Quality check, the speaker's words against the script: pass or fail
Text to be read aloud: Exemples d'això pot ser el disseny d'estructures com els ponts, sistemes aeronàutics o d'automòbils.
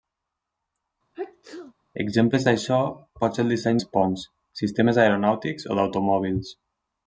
fail